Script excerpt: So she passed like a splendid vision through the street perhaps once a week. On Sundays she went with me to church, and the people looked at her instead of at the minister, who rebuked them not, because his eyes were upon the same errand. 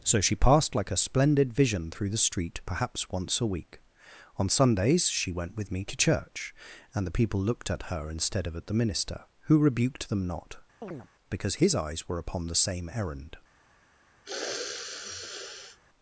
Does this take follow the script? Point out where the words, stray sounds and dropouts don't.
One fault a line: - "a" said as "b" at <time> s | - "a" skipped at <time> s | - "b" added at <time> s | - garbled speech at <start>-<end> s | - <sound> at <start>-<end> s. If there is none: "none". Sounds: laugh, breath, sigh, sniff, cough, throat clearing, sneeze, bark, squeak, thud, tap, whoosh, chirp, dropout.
- chirp at 10.8-11.1 s
- sniff at 14.2-15.8 s